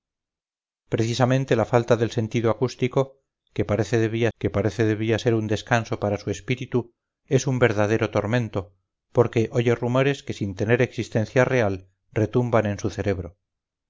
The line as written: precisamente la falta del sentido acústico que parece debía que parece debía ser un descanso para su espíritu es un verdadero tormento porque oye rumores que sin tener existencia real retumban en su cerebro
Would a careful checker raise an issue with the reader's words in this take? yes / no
no